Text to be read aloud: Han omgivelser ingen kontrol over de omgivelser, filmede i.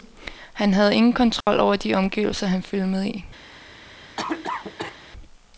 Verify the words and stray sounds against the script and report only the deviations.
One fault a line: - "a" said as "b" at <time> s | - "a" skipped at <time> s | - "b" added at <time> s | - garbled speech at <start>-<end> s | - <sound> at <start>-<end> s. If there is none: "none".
- "omgivelser" said as "havde" at 0.7 s
- dropout at 1.4-1.5 s
- "han" added at 2.5 s
- cough at 4.2-5.0 s